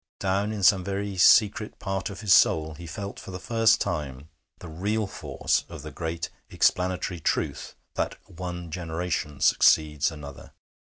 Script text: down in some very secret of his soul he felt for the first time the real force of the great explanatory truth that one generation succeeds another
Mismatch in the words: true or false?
true